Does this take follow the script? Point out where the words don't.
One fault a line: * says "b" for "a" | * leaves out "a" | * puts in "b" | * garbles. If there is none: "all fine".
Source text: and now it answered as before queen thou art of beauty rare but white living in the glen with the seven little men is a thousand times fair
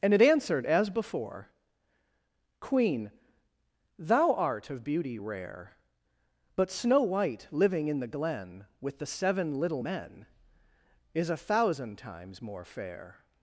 * leaves out "now"
* puts in "snow"
* puts in "more"